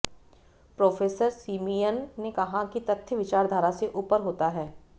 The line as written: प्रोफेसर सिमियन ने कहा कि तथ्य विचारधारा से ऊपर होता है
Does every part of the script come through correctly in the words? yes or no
yes